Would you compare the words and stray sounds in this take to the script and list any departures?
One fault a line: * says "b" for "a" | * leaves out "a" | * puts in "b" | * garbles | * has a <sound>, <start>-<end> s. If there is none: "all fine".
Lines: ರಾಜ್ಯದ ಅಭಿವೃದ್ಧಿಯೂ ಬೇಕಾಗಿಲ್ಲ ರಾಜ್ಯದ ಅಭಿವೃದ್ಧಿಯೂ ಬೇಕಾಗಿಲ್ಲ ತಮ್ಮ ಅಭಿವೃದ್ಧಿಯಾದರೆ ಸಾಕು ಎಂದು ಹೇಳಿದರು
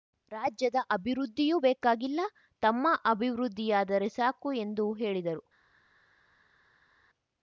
* leaves out "ರಾಜ್ಯದ ಅಭಿವೃದ್ಧಿಯೂ ಬೇಕಾಗಿಲ್ಲ"